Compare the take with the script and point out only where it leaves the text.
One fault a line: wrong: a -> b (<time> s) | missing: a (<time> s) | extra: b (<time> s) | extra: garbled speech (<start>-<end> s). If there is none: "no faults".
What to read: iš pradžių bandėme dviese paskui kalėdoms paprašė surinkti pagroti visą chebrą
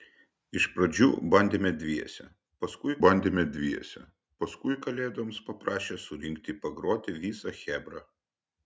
extra: bandėme dviese paskui (3.0 s)